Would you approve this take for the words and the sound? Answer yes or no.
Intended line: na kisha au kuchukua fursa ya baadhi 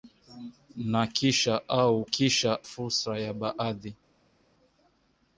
no